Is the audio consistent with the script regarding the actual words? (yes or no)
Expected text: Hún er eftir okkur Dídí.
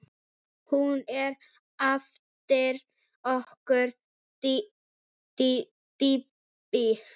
yes